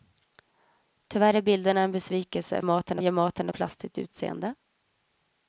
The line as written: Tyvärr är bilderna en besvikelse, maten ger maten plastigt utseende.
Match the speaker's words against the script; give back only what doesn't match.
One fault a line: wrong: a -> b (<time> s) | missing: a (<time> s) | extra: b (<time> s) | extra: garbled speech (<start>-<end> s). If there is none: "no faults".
no faults